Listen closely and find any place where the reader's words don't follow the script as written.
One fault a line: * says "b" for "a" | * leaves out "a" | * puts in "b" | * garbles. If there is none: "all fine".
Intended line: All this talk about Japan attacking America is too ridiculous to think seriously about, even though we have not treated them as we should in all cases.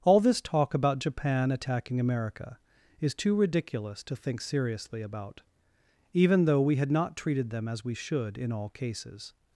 * says "had" for "have"